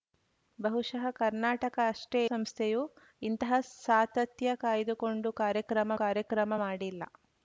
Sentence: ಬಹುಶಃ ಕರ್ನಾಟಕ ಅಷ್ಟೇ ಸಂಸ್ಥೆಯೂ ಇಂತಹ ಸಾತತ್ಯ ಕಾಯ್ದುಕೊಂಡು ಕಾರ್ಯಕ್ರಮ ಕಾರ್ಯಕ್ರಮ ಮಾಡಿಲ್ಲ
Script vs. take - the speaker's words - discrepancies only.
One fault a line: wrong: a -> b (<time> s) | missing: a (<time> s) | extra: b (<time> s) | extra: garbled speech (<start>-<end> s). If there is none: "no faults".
no faults